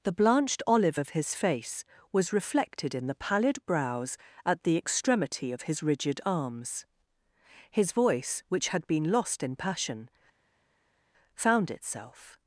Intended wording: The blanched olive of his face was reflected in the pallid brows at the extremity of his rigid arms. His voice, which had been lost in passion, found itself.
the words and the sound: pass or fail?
pass